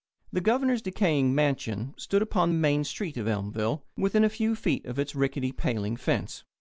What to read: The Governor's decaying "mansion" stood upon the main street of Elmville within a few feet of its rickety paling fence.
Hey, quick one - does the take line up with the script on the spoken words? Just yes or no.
yes